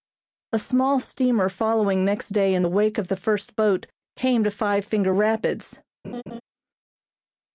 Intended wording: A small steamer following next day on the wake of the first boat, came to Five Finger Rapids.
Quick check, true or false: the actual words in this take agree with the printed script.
false